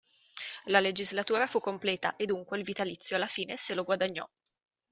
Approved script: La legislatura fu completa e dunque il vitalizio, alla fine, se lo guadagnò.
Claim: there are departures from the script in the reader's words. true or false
false